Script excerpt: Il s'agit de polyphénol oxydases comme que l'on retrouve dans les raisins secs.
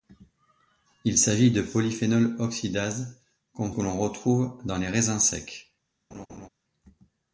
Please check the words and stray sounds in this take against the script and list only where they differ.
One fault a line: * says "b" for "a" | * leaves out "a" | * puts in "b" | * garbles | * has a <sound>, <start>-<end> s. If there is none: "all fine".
* has a laugh, 6.1-6.5 s